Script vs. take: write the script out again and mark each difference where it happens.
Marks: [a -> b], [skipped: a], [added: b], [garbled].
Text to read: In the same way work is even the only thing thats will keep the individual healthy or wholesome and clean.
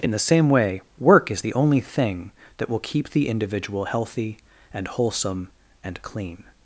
In the same way work is [skipped: even] the only thing [thats -> that] will keep the individual healthy [or -> and] wholesome and clean.